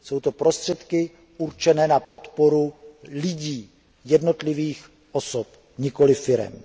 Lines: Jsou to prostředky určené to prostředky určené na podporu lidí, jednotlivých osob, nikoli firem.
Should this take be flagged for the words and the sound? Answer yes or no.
yes